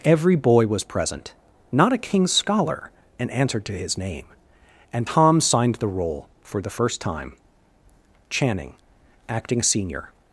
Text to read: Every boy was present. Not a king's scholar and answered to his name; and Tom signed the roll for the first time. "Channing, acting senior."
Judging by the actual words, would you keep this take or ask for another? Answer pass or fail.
pass